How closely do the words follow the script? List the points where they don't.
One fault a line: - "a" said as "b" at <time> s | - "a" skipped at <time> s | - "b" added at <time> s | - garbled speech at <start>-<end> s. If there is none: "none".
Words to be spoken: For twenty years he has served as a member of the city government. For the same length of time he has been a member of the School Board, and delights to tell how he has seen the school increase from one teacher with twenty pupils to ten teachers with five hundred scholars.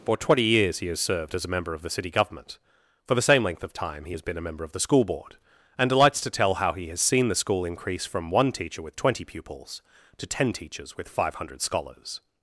none